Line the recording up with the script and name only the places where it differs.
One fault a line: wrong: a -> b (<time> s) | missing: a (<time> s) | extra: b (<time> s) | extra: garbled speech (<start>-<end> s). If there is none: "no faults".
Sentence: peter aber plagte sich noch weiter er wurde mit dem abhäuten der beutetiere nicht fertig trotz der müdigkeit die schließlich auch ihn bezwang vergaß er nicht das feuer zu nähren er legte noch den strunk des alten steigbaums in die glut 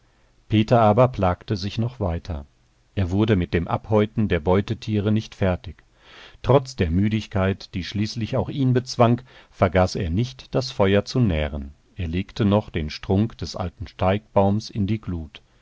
no faults